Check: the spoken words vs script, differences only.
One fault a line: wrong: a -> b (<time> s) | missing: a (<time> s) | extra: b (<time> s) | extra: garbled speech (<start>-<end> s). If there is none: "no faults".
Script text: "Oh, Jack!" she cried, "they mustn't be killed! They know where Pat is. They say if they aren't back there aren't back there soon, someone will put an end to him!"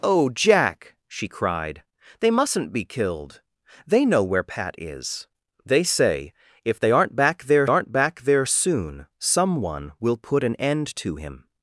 no faults